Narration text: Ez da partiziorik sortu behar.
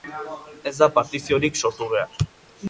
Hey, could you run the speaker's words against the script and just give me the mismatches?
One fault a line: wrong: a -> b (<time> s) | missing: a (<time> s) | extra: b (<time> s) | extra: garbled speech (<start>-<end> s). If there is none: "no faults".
no faults